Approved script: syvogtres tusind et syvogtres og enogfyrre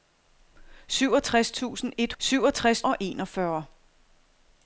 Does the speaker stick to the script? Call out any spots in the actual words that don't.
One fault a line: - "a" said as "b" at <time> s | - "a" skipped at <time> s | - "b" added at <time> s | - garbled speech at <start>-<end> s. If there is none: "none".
none